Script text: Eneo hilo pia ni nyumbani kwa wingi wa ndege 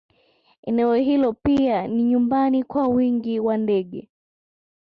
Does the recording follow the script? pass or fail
pass